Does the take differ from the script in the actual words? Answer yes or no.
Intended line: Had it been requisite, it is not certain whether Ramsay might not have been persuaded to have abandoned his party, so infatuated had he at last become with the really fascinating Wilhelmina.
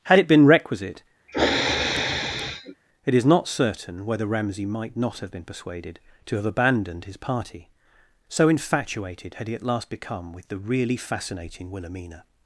no